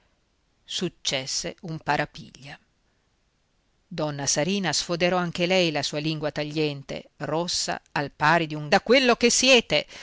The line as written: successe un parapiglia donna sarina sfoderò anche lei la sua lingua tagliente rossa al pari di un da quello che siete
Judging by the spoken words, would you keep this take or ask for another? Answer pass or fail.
pass